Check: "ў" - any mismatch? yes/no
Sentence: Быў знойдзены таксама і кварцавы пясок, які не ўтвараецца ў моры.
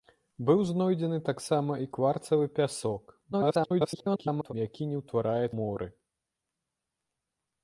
yes